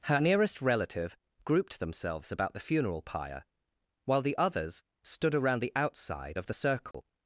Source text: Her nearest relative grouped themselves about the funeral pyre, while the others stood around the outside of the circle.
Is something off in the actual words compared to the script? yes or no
no